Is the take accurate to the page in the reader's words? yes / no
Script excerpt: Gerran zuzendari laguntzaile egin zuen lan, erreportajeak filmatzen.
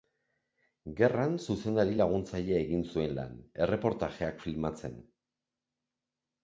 yes